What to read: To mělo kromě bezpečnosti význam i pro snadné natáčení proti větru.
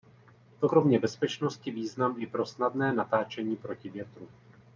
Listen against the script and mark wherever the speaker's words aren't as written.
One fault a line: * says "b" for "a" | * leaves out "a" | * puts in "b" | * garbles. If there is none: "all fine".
* leaves out "mělo"